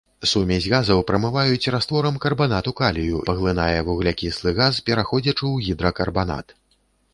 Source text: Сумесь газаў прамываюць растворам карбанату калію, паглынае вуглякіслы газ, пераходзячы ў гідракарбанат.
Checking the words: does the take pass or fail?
pass